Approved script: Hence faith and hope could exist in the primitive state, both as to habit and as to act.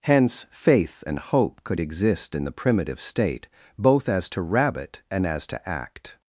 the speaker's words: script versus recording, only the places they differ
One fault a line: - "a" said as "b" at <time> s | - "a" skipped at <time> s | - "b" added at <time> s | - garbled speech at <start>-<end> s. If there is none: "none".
- "habit" said as "rabbit" at 4.4 s